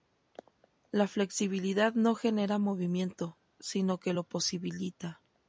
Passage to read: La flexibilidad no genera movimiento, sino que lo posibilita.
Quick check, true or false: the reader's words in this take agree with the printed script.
true